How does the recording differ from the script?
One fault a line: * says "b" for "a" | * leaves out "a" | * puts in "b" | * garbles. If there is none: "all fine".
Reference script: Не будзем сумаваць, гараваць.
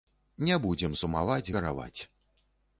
all fine